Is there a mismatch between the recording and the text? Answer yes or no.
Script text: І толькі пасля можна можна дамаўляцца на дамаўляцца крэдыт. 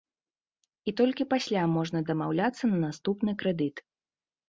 yes